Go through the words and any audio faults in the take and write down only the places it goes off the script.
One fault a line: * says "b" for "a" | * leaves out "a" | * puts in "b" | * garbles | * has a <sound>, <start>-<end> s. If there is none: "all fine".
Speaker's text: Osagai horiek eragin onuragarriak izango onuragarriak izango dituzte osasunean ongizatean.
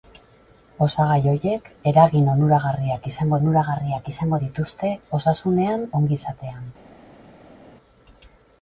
all fine